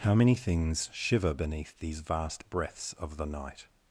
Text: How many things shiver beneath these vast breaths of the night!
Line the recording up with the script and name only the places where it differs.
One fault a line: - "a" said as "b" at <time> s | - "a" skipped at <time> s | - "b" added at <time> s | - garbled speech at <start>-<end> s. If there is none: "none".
none